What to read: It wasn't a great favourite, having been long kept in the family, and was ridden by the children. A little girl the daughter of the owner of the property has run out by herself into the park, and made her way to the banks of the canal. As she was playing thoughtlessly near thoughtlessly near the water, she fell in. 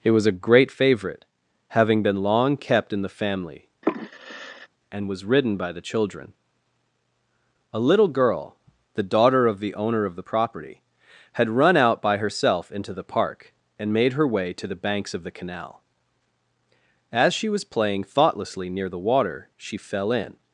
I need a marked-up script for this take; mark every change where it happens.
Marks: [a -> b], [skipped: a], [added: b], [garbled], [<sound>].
It [wasn't -> was] a great favourite, having been long kept in the family, [sigh] and was ridden by the children. A little girl the daughter of the owner of the property [has -> had] run out by herself into the park, and made her way to the banks of the canal. As she was playing thoughtlessly near [skipped: thoughtlessly near] the water, she fell in.